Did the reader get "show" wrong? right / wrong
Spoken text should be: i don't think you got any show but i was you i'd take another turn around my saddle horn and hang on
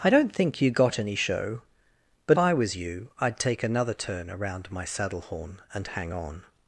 right